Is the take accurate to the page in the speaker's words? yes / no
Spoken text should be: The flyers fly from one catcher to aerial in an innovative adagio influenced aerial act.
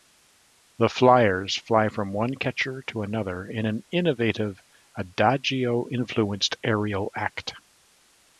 no